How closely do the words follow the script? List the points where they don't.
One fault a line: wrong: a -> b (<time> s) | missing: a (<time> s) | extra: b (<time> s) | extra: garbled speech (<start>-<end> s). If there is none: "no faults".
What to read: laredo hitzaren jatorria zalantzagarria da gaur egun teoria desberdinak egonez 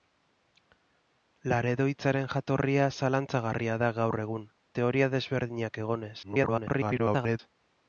extra: garbled speech (6.2-7.4 s)